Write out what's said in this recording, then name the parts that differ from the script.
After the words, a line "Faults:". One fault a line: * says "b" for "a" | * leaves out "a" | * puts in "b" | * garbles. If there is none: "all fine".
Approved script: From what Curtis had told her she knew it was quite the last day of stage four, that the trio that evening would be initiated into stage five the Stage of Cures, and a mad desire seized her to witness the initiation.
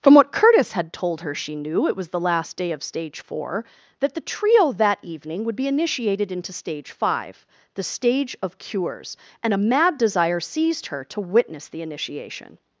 From what Curtis had told her she knew it was the last day of stage four, that the trio that evening would be initiated into stage five the Stage of Cures, and a mad desire seized her to witness the initiation.
Faults:
* leaves out "quite"